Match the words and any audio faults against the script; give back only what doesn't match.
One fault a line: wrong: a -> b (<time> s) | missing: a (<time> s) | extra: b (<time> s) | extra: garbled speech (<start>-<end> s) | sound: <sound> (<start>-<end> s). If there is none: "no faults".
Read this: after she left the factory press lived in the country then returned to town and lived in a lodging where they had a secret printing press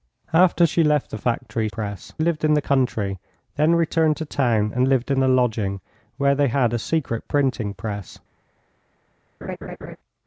sound: laugh (9.4-10.0 s)